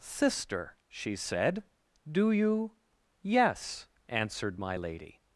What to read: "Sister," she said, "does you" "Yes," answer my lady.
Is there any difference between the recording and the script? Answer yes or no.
yes